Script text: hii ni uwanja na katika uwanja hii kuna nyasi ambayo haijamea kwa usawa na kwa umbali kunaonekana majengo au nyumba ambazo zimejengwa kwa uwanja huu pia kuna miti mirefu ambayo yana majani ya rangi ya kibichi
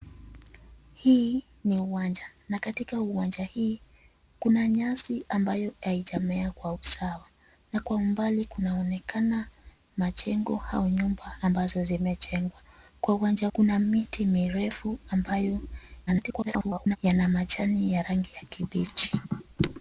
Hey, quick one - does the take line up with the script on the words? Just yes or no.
no